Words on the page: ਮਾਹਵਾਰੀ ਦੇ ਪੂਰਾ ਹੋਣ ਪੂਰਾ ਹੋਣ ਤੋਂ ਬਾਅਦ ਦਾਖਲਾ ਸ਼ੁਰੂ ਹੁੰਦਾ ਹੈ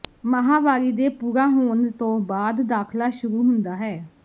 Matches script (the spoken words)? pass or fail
fail